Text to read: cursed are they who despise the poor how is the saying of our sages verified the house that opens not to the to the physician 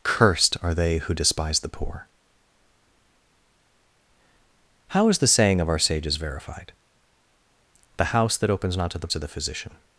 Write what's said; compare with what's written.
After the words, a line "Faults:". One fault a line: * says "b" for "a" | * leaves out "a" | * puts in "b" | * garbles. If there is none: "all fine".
cursed are they who despise the poor how is the saying of our sages verified the house that opens not to the to the physician
Faults:
all fine